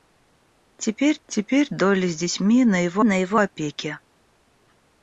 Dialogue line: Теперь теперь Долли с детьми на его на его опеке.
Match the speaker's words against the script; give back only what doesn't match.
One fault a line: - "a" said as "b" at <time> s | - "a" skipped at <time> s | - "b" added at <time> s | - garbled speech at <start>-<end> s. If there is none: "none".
none